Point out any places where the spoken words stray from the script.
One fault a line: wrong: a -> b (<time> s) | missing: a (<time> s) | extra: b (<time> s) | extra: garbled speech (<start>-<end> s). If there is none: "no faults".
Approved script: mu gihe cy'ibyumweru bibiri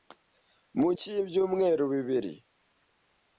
missing: gihe (0.9 s)